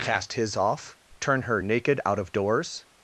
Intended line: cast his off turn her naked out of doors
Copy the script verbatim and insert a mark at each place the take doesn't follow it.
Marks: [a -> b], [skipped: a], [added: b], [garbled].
cast his off turn her naked out of doors